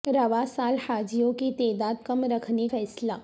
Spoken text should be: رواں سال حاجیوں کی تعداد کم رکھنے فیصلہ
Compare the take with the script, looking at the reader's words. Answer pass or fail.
pass